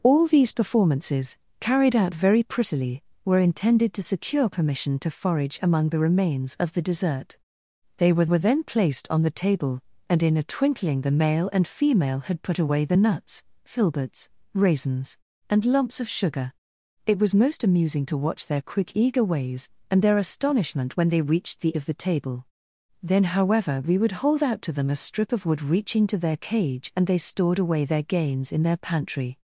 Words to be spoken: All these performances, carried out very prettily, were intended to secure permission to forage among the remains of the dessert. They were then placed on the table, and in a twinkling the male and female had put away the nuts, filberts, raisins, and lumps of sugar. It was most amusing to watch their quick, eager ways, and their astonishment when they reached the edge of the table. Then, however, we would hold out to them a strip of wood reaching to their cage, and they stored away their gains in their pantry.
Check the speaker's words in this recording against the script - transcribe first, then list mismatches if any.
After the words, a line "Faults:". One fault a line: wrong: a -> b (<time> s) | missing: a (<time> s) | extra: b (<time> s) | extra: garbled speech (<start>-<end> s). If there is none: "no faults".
All these performances, carried out very prettily, were intended to secure permission to forage among the remains of the dessert. They were were then placed on the table, and in a twinkling the male and female had put away the nuts, filberts, raisins, and lumps of sugar. It was most amusing to watch their quick, eager ways, and their astonishment when they reached the of the table. Then, however, we would hold out to them a strip of wood reaching to their cage, and they stored away their gains in their pantry.
Faults:
extra: were (8.2 s)
missing: edge (21.7 s)